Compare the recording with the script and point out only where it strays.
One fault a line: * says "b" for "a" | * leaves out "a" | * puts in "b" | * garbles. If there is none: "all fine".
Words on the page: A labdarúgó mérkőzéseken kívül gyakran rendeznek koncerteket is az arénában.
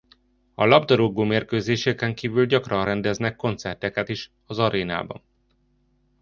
all fine